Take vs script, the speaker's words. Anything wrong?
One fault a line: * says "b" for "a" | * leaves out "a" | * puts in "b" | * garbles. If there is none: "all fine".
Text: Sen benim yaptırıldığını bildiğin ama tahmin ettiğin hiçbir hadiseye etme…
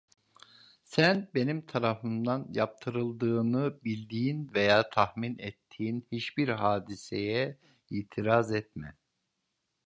* puts in "tarafımdan"
* says "veya" for "ama"
* puts in "itiraz"